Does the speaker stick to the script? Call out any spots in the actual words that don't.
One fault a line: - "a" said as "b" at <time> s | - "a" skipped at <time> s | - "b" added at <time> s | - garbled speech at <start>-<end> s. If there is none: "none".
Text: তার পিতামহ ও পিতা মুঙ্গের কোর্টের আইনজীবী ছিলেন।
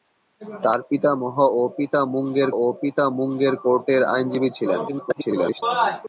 - "ও পিতা মুঙ্গের" added at 2.5 s
- garbled speech at 4.9-5.6 s